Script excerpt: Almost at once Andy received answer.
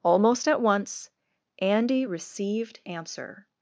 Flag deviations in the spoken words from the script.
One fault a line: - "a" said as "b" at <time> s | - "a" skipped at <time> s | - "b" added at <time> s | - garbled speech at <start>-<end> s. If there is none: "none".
none